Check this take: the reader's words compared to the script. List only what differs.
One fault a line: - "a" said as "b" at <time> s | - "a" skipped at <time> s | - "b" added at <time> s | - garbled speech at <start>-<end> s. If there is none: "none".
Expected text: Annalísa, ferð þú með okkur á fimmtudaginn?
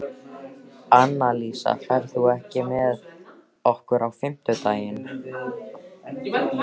none